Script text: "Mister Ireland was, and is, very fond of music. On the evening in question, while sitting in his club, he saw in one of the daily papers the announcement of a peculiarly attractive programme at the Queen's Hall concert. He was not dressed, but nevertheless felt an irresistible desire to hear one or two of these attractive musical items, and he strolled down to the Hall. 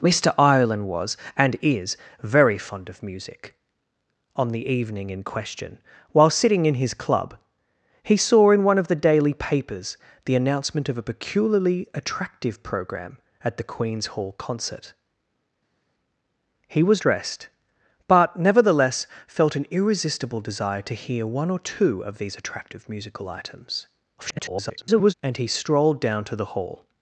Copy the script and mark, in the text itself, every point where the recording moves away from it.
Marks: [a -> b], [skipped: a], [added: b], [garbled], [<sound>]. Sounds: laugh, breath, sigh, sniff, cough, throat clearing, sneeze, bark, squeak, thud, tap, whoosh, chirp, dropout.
"Mister Ireland was, and is, very fond of music. On the evening in question, while sitting in his club, he saw in one of the daily papers the announcement of a peculiarly attractive programme at the Queen's Hall concert. He was [skipped: not] dressed, but nevertheless felt an irresistible desire to hear one or two of these attractive musical items, [garbled] and he strolled down to the Hall.